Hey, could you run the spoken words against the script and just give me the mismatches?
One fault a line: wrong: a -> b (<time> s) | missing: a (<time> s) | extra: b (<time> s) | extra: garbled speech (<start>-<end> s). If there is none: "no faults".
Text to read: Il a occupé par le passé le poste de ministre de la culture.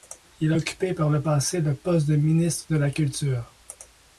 no faults